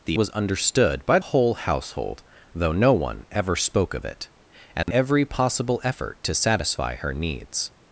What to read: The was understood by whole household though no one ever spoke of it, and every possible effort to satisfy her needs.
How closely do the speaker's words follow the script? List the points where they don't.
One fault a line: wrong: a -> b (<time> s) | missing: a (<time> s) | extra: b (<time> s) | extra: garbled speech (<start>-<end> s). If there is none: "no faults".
no faults